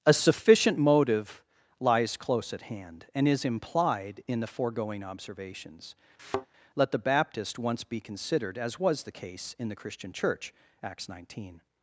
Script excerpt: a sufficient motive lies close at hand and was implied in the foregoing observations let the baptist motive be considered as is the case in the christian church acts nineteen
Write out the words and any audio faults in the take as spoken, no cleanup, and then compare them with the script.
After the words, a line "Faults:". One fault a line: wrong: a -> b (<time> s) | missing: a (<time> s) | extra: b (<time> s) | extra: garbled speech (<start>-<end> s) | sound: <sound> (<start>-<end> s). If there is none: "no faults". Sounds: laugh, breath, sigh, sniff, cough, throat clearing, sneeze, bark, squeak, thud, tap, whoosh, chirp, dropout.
a sufficient motive lies close at hand and is implied in the foregoing observations let the baptist once be considered as was the case in the christian church acts nineteen
Faults:
wrong: was -> is (3.3 s)
sound: thud (6.2-6.5 s)
wrong: motive -> once (7.6 s)
wrong: is -> was (8.8 s)